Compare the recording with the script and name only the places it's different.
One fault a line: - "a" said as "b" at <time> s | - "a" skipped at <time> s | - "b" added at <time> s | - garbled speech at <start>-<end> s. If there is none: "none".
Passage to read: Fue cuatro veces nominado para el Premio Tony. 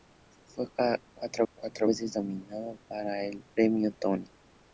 - "cuatro" added at 1.5 s